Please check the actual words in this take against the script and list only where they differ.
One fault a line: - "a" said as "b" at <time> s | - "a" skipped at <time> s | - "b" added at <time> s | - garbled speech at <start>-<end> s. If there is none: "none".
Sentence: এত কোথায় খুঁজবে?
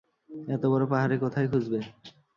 - "বড় পাহাড়ে" added at 0.7 s